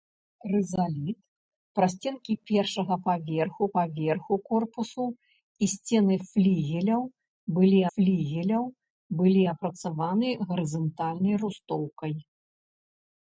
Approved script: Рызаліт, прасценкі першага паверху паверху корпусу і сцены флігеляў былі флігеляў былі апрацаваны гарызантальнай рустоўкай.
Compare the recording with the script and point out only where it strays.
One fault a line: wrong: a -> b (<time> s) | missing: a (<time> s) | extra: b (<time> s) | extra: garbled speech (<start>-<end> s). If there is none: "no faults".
no faults